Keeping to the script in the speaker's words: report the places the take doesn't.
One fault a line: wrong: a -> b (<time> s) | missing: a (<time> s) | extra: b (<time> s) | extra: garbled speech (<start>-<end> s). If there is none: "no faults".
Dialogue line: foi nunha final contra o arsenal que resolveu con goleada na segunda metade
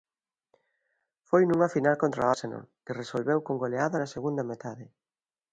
no faults